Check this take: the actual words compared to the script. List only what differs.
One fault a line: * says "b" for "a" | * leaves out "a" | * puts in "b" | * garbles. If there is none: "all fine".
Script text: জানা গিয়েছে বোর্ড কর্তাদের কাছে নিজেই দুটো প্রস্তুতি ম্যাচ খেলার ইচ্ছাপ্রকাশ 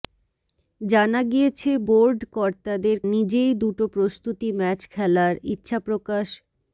* leaves out "কাছে"